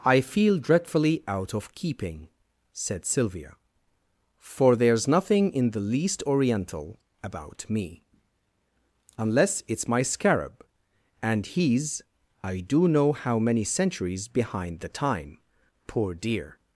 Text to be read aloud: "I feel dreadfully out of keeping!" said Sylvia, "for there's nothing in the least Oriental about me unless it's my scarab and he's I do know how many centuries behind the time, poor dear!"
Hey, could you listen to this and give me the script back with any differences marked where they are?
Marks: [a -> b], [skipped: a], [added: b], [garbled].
"I feel dreadfully out of keeping!" said Sylvia, "for there's nothing in the least Oriental about me unless it's my scarab and he's I do know how many centuries behind the time, poor dear!"